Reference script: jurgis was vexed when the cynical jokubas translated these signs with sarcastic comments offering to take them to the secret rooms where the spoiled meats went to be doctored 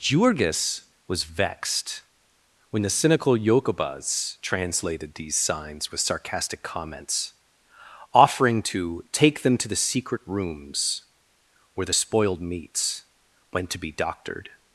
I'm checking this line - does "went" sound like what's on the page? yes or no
yes